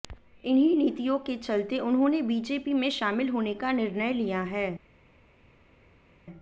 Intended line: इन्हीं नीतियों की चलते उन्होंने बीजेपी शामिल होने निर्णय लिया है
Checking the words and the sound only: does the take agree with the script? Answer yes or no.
no